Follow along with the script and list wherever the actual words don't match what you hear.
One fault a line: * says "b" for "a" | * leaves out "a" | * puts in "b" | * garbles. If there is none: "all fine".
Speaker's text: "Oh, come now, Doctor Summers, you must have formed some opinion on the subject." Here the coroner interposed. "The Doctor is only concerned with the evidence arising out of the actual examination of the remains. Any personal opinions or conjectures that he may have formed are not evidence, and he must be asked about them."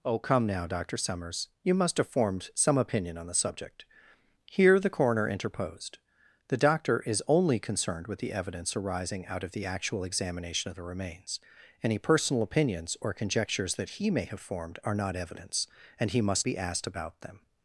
all fine